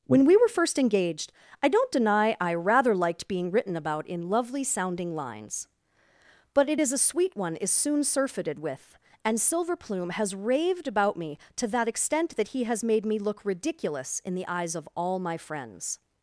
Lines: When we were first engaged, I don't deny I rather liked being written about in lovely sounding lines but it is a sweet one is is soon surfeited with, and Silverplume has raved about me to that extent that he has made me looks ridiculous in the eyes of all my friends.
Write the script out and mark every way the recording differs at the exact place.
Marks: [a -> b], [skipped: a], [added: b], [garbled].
When we were first engaged, I don't deny I rather liked being written about in lovely sounding lines but it is a sweet one is [skipped: is] soon surfeited with, and Silverplume has raved about me to that extent that he has made me [looks -> look] ridiculous in the eyes of all my friends.